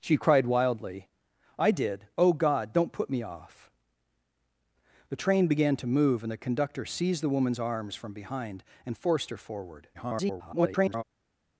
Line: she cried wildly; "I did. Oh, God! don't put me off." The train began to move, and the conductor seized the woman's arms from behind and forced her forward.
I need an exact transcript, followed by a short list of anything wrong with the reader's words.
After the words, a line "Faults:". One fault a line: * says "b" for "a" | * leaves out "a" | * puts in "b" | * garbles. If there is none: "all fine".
she cried wildly; "I did. Oh, God! don't put me off." The train began to move, and the conductor seized the woman's arms from behind and forced her forward. [garbled]
Faults:
* garbles